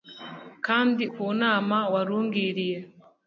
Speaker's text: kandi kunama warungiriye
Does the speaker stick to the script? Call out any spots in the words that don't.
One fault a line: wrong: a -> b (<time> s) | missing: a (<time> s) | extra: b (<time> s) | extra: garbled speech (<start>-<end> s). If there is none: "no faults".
no faults